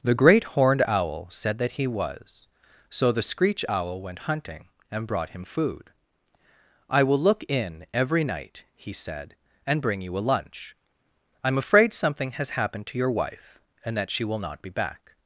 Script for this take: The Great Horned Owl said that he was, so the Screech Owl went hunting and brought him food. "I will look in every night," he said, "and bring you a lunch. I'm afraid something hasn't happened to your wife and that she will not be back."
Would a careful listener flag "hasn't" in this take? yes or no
yes